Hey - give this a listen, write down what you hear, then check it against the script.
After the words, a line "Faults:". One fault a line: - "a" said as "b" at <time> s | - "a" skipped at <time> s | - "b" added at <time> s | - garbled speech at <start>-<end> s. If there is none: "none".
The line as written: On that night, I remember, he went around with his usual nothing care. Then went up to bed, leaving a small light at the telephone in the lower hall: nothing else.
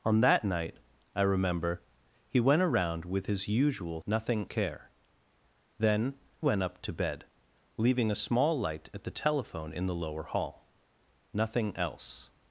On that night, I remember, he went around with his usual nothing care. Then went up to bed, leaving a small light at the telephone in the lower hall: nothing else.
Faults:
none